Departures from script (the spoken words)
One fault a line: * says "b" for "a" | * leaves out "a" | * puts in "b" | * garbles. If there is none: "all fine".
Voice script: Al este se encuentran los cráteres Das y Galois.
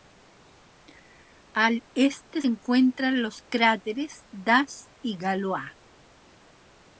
* leaves out "se"